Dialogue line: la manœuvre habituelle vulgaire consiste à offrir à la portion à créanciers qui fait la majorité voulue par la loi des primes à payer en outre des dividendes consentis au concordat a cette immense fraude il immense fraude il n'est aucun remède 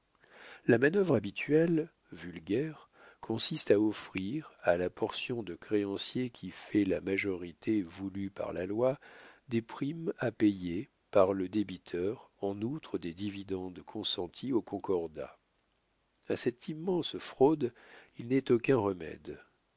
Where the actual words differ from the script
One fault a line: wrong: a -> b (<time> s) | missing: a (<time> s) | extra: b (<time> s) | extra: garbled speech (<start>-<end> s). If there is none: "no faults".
wrong: à -> de (5.4 s)
extra: par le débiteur (11.1 s)
missing: immense fraude il (18.3 s)